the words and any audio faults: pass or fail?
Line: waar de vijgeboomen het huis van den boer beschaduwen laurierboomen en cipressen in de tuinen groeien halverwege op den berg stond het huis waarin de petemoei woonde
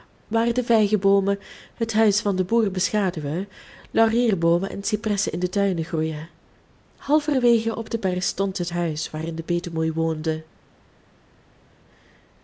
pass